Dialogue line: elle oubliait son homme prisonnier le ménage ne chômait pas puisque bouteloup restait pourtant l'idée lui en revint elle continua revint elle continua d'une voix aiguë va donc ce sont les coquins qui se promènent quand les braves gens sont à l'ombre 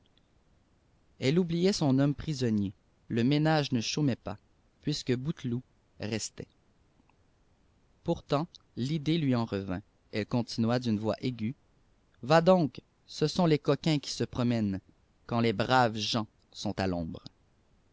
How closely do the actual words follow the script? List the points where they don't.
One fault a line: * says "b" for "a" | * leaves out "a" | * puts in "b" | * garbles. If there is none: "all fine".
* leaves out "revint elle continua"